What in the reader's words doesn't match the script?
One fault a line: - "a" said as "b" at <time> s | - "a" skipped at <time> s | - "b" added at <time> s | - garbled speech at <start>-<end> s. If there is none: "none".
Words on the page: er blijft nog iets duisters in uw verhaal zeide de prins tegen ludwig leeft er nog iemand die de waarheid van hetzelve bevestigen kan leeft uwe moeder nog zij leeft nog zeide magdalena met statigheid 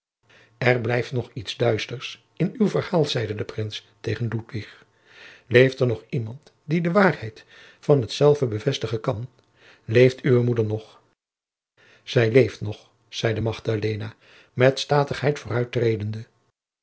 none